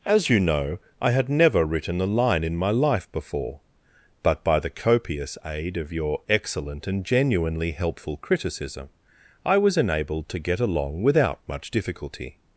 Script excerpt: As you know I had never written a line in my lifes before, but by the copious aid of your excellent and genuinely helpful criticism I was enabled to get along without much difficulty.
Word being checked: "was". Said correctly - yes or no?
yes